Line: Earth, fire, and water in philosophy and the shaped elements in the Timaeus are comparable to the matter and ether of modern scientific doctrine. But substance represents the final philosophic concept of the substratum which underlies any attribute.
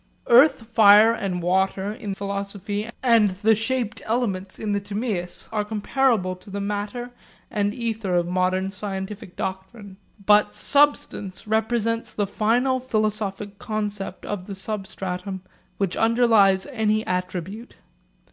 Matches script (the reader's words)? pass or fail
pass